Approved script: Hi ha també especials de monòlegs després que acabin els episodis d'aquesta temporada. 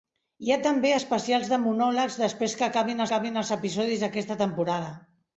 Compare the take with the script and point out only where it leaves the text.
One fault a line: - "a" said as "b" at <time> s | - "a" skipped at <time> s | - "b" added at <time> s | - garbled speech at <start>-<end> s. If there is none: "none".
- "acabin" added at 3.1 s